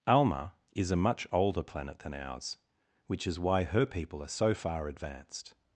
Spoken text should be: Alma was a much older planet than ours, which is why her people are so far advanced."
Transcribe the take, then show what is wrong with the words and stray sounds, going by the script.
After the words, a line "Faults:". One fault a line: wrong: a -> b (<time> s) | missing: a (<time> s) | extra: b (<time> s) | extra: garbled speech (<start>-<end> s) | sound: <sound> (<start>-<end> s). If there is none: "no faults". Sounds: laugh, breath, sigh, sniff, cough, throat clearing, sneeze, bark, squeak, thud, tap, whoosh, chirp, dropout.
Alma is a much older planet than ours, which is why her people are so far advanced."
Faults:
wrong: was -> is (0.7 s)